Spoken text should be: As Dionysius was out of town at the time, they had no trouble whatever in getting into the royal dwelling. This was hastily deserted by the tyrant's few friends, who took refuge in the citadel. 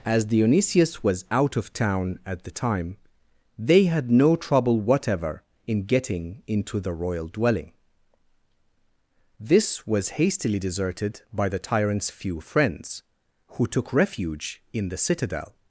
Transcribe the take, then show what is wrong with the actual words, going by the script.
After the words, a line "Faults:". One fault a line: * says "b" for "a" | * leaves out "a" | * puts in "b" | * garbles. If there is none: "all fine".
As Dionysius was out of town at the time, they had no trouble whatever in getting into the royal dwelling. This was hastily deserted by the tyrant's few friends, who took refuge in the citadel.
Faults:
all fine